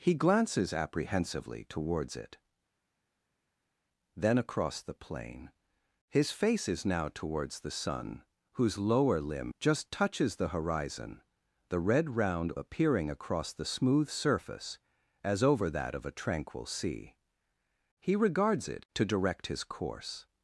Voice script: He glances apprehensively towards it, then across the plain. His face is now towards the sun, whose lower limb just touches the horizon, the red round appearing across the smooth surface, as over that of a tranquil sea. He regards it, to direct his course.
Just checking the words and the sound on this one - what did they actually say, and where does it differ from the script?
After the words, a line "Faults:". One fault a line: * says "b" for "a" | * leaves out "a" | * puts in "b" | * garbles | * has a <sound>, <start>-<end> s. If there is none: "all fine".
He glances apprehensively towards it, then across the plain. His face is now towards the sun, whose lower limb just touches the horizon, the red round appearing across the smooth surface, as over that of a tranquil sea. He regards it, to direct his course.
Faults:
all fine